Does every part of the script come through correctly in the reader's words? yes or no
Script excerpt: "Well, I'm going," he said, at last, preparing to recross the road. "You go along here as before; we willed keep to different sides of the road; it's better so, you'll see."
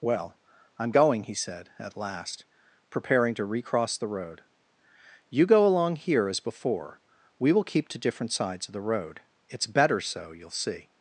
no